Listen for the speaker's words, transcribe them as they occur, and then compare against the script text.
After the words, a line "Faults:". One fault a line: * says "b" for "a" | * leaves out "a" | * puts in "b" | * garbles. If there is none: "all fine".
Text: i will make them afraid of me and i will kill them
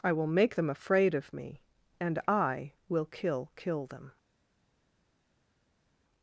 i will make them afraid of me and i will kill kill them
Faults:
* puts in "kill"